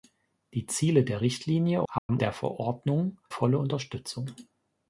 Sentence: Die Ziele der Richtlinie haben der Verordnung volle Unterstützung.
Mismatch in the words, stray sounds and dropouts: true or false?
true